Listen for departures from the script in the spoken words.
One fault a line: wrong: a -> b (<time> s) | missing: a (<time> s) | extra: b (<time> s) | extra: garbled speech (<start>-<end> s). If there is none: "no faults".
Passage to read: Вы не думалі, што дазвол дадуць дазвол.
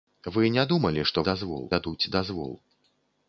no faults